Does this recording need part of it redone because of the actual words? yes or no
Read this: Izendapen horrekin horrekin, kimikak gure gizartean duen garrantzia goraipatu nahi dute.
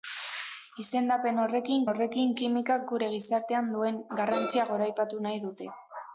no